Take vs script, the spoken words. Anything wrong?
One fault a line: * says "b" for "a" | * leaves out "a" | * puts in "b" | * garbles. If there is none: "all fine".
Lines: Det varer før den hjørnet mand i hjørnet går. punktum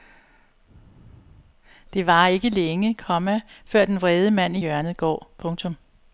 * puts in "ikke længe komma"
* says "vrede" for "hjørnet"